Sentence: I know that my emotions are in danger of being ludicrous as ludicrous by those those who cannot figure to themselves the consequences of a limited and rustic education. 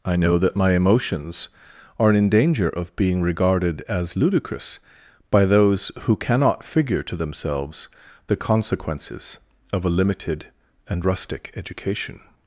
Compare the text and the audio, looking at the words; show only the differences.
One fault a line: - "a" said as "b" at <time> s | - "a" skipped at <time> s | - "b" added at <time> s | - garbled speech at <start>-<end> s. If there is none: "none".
- "ludicrous" said as "regarded" at 3.2 s
- "those" skipped at 5.9 s